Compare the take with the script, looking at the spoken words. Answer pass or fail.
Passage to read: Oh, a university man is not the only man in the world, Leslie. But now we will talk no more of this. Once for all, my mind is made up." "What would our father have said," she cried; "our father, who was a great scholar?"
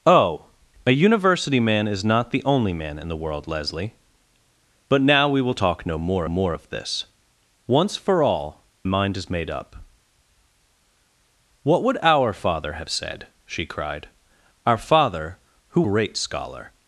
fail